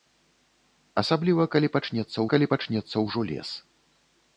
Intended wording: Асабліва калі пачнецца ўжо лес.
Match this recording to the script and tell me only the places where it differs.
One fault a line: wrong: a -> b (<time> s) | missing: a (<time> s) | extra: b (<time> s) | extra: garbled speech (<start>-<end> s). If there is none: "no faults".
extra: калі пачнецца (2.4 s)